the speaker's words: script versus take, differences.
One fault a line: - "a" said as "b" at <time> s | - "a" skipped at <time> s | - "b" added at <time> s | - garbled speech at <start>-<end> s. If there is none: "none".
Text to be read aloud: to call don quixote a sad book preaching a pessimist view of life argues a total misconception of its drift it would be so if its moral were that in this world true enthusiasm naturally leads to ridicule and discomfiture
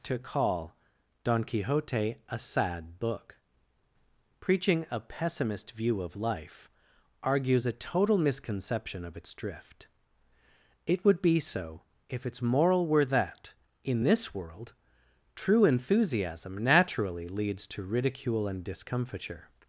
none